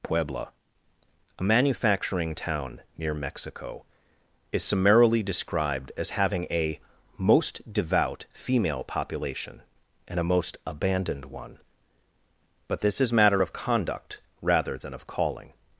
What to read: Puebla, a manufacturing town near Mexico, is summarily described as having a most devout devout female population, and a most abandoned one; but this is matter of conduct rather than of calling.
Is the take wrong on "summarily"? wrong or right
right